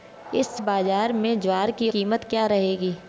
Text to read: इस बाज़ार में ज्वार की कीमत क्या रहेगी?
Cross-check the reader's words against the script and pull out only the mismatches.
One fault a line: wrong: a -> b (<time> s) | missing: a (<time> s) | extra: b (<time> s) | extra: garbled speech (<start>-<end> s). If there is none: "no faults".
no faults